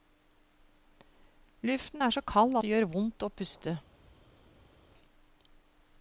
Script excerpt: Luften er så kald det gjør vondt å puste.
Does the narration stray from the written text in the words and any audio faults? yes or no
no